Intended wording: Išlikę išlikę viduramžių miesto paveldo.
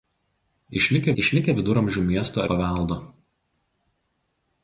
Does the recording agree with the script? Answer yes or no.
yes